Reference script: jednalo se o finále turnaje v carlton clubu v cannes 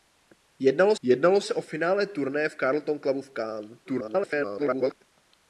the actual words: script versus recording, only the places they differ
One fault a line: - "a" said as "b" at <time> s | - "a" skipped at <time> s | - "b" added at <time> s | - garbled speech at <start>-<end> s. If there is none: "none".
- "jednalo" added at 1.0 s
- garbled speech at 3.9-4.9 s